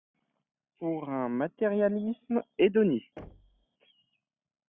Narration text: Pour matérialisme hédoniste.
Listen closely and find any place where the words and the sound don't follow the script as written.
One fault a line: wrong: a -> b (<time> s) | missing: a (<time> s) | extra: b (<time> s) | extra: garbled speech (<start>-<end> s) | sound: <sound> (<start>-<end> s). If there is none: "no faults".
extra: un (1.1 s)
sound: thud (3.2-3.7 s)